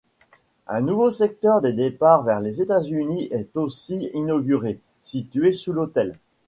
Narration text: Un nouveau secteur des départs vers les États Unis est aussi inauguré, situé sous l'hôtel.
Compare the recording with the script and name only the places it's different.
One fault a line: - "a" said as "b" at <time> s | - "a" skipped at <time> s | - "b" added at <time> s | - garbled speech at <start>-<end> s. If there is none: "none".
none